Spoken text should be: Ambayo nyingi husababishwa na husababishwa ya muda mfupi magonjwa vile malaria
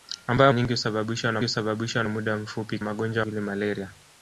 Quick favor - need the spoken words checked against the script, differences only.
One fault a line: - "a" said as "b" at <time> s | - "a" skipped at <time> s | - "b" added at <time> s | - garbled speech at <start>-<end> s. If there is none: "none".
none